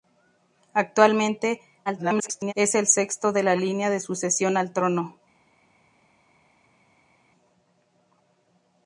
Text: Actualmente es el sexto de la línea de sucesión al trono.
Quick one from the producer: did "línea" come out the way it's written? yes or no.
yes